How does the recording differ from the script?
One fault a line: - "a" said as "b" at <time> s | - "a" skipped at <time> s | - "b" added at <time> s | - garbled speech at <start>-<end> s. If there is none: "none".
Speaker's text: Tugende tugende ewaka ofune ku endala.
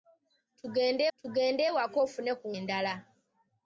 none